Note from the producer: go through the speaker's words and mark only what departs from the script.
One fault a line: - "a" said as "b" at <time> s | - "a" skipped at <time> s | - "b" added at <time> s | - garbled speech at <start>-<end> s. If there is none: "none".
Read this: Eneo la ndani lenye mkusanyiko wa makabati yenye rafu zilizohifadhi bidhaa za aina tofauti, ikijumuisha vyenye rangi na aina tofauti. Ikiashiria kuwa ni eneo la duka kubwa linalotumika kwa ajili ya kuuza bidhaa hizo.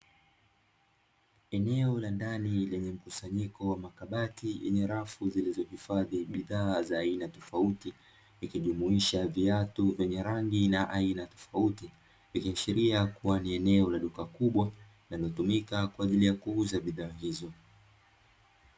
- "viatu" added at 9.3 s